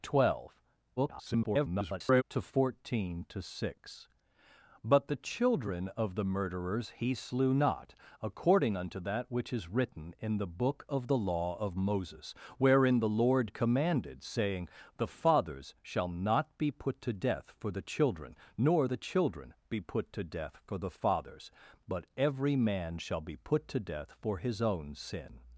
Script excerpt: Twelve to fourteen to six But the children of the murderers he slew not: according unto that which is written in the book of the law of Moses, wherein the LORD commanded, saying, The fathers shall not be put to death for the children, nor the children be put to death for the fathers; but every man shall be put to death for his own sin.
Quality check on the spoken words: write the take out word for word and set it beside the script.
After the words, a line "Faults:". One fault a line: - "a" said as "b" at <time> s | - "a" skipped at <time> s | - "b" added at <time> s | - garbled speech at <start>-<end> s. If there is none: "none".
Twelve [garbled] to fourteen to six But the children of the murderers he slew not: according unto that which is written in the book of the law of Moses, wherein the LORD commanded, saying, The fathers shall not be put to death for the children, nor the children be put to death for the fathers; but every man shall be put to death for his own sin.
Faults:
- garbled speech at 1.0-2.2 s